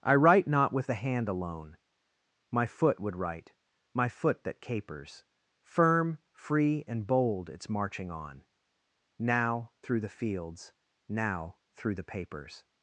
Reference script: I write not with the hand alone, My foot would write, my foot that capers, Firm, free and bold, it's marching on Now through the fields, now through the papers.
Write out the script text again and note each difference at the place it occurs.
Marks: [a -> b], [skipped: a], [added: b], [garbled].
I write not with the hand alone, My foot would write, my foot that capers, Firm, free and bold, it's marching on Now through the fields, now through the papers.